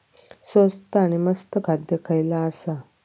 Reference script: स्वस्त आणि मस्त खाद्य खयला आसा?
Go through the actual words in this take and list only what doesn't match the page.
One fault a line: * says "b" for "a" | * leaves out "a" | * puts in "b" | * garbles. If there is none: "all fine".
all fine